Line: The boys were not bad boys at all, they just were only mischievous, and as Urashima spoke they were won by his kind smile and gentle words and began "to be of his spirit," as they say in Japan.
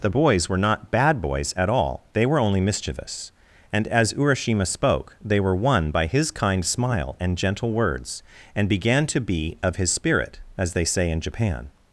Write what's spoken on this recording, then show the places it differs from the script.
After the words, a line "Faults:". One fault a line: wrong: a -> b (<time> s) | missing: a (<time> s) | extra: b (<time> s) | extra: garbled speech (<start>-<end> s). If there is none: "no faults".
The boys were not bad boys at all, they were only mischievous, and as Urashima spoke they were won by his kind smile and gentle words and began "to be of his spirit," as they say in Japan.
Faults:
missing: just (2.2 s)